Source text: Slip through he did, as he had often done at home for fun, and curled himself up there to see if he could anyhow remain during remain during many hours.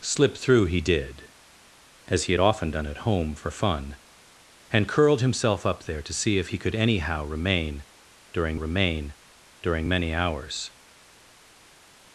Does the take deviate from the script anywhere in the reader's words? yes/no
no